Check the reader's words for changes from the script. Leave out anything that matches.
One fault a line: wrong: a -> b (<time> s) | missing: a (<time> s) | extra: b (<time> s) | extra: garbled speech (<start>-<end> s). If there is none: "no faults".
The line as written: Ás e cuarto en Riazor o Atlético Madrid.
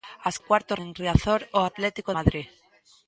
no faults